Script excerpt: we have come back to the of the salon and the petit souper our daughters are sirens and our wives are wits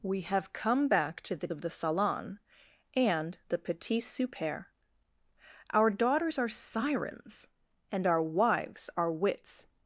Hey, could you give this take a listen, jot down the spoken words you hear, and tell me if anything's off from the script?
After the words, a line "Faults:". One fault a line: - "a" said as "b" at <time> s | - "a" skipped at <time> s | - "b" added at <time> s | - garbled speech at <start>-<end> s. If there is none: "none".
we have come back to the of the salon and the petit souper our daughters are sirens and our wives are wits
Faults:
none